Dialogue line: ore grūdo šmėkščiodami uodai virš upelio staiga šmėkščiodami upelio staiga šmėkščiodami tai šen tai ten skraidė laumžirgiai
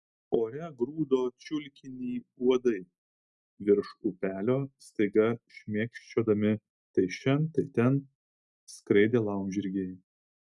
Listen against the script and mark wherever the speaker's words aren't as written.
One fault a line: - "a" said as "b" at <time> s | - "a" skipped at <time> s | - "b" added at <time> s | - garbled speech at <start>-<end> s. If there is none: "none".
- "šmėkščiodami" said as "čiulkinį" at 1.5 s
- "upelio staiga šmėkščiodami" skipped at 6.5 s